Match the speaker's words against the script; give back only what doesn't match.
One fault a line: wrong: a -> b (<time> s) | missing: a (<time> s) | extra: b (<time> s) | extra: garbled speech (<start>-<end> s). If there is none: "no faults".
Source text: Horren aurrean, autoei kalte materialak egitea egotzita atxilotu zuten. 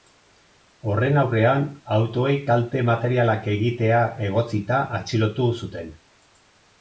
no faults